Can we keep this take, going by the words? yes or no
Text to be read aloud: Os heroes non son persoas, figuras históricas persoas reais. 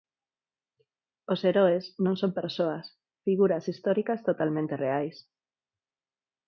no